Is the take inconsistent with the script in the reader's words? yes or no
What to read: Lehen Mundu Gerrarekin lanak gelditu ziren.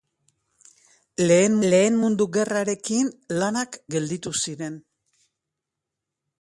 yes